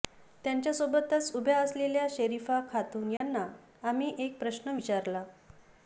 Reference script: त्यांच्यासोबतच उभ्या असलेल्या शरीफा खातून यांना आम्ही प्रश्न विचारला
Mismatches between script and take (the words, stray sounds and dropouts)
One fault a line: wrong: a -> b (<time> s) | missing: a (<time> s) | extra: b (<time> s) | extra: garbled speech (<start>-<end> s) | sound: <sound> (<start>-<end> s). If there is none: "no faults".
sound: dropout (3.2-3.2 s)
extra: एक (4.2 s)